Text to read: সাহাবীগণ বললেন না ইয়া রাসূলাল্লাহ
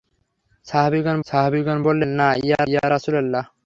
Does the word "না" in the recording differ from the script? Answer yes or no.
no